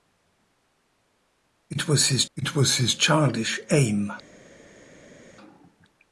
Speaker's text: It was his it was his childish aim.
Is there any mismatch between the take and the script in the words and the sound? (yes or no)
no